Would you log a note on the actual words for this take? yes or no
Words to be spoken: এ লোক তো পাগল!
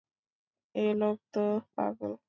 no